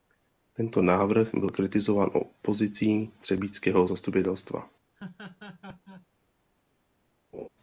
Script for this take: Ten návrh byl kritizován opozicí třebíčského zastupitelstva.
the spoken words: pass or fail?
fail